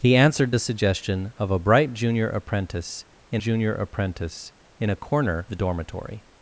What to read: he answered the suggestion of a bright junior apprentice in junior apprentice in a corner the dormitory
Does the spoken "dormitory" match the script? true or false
true